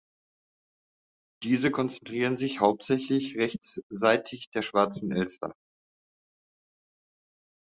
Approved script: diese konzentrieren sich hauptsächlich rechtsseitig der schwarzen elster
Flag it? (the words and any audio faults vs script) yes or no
no